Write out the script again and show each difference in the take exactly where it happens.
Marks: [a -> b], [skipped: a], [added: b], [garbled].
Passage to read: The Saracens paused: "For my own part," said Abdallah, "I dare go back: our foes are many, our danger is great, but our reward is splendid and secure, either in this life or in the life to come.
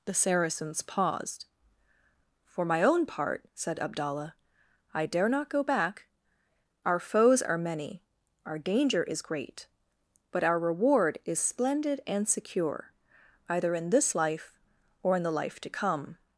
The Saracens paused: "For my own part," said Abdallah, "I dare [added: not] go back: our foes are many, our danger is great, but our reward is splendid and secure, either in this life or in the life to come.